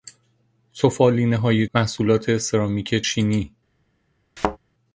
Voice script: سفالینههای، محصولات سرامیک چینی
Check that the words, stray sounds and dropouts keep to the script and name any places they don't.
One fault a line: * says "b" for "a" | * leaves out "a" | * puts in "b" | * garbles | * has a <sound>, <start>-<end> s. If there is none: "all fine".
* has a thud, 4.4-4.6 s